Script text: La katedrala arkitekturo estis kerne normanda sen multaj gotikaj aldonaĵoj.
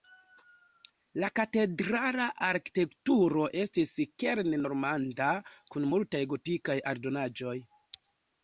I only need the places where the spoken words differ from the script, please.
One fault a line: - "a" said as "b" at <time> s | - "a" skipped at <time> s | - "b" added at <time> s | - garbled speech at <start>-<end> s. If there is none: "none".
- "sen" said as "kun" at 5.7 s